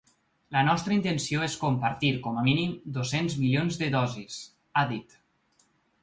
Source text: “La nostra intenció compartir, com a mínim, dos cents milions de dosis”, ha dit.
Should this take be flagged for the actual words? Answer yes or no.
yes